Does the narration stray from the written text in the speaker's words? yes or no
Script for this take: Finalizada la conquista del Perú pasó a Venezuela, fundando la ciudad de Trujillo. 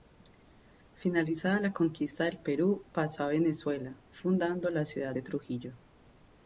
no